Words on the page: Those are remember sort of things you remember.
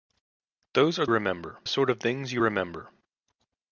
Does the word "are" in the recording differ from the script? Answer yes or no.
no